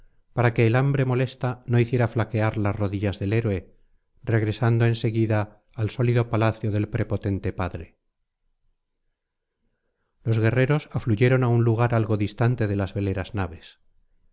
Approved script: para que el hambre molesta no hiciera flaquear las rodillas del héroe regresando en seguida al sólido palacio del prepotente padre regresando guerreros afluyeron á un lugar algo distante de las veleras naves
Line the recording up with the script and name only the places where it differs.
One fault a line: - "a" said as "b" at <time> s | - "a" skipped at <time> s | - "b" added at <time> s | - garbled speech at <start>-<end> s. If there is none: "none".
- "regresando" said as "los" at 10.3 s